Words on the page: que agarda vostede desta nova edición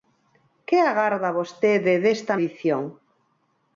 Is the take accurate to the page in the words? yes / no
no